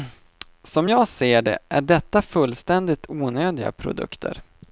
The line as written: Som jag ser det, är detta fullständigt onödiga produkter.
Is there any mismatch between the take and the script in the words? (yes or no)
no